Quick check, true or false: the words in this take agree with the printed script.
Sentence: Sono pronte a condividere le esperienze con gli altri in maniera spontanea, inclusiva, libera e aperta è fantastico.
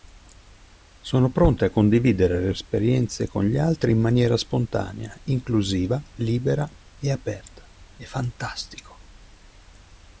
true